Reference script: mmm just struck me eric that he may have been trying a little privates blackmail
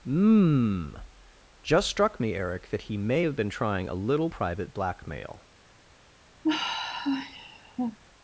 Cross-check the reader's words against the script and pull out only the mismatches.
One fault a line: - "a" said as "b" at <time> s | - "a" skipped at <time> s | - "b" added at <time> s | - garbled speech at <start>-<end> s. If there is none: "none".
- "privates" said as "private" at 4.2 s